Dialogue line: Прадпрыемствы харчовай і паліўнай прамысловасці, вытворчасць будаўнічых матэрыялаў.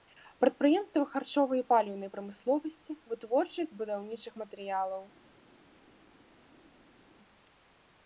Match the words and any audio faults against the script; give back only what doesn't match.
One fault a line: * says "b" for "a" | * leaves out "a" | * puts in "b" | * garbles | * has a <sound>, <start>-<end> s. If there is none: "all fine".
all fine